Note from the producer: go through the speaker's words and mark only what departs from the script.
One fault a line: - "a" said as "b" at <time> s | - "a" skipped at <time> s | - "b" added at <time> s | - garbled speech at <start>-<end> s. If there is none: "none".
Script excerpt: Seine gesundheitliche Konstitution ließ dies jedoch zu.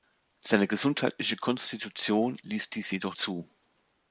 none